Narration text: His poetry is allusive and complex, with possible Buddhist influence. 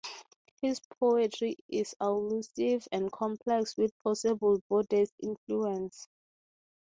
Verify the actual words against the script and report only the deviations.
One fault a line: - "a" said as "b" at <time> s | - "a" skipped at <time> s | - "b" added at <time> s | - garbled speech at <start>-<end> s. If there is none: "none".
none